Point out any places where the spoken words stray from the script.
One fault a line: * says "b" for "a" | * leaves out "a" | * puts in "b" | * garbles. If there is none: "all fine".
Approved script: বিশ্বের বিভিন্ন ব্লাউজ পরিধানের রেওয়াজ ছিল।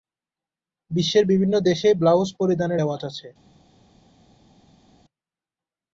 * puts in "দেশেই"
* says "আছে" for "ছিল"